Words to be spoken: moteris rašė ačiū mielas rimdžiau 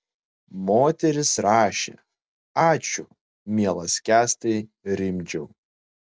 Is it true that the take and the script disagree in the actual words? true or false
true